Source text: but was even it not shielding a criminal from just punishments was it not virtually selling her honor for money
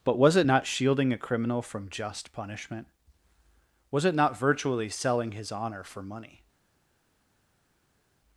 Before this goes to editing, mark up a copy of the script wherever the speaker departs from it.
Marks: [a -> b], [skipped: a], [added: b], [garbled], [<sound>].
but was [skipped: even] it not shielding a criminal from just [punishments -> punishment] was it not virtually selling [her -> his] honor for money